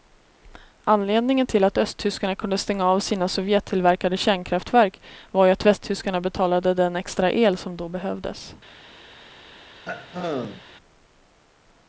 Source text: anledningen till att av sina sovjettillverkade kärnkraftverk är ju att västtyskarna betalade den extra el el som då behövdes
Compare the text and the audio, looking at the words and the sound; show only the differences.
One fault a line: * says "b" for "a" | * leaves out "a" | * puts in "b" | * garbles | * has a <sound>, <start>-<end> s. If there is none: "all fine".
* puts in "östtyskarna kunde stänga"
* says "var" for "är"
* leaves out "el"
* has a throat clearing, 9.9-10.6 s